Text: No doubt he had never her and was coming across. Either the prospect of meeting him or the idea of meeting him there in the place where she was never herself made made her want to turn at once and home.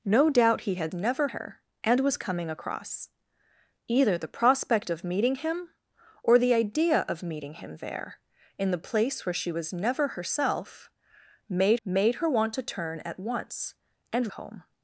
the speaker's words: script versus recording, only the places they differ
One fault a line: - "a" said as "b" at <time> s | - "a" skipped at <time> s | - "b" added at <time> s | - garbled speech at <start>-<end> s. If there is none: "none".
none